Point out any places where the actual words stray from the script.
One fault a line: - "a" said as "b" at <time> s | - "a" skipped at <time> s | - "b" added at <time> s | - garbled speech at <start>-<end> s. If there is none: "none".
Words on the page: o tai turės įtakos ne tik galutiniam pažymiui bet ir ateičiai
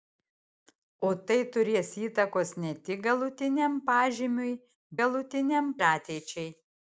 - "bet" said as "galutiniam" at 5.0 s